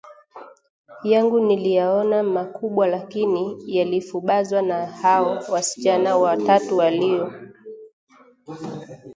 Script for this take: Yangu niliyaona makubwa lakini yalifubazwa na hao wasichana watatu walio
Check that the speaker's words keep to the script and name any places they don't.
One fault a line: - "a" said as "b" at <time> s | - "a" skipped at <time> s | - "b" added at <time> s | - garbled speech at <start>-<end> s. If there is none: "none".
none